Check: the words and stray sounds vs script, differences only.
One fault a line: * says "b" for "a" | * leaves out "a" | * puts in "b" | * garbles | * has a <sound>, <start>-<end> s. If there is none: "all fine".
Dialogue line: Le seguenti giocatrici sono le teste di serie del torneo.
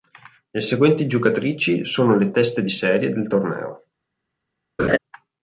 * has a laugh, 4.8-5.0 s